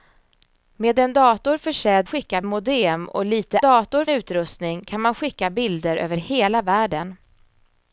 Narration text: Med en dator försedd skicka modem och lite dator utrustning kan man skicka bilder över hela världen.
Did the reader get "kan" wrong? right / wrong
right